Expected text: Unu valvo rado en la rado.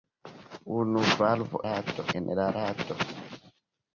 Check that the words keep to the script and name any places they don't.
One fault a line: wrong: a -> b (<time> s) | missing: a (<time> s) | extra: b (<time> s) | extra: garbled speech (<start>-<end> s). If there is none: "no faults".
no faults